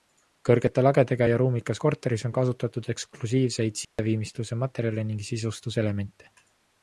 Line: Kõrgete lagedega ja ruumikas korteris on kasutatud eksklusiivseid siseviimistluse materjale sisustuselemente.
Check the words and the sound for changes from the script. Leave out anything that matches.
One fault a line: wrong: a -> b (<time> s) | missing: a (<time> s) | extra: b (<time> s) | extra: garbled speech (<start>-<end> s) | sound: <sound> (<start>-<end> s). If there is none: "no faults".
sound: dropout (3.8-4.0 s)
extra: ning (5.1 s)